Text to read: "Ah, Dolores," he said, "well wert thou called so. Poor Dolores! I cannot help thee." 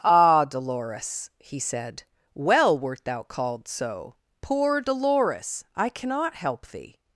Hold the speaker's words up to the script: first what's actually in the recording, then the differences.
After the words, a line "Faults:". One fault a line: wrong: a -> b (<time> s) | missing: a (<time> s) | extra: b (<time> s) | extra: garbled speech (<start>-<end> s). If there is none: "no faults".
"Ah, Dolores," he said, "well wert thou called so. Poor Dolores! I cannot help thee."
Faults:
no faults